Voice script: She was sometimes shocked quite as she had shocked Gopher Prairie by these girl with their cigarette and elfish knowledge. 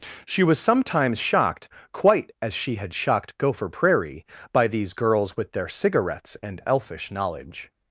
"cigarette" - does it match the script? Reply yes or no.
no